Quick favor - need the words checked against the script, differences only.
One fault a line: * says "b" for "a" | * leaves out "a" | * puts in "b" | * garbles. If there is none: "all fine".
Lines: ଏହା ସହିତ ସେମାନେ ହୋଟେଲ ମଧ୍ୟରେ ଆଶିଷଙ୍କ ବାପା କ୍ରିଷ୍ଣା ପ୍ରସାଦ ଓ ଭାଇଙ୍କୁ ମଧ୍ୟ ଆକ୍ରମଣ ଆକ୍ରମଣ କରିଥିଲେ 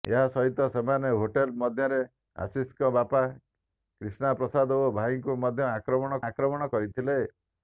all fine